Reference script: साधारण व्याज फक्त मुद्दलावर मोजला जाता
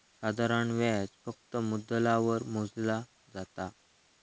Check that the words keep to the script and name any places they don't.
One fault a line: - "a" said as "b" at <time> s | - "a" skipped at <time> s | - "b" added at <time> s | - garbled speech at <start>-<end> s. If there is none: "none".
none